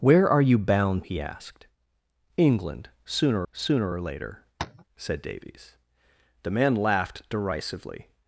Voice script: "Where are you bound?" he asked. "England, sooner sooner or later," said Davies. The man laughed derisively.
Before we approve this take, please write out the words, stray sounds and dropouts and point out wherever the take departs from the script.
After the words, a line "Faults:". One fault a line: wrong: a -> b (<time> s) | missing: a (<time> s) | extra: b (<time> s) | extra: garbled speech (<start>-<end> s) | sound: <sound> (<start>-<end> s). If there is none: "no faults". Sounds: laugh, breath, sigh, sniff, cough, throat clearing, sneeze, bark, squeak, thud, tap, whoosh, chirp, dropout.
"Where are you bound?" he asked. "England, sooner sooner or later," said Davies. The man laughed derisively.
Faults:
sound: tap (4.6-4.8 s)